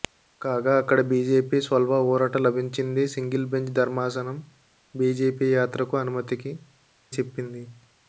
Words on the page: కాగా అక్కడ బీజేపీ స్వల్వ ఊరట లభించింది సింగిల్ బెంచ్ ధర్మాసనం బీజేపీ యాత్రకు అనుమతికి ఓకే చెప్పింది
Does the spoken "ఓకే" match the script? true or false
false